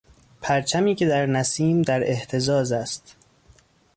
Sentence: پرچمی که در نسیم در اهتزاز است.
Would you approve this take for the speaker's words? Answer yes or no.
yes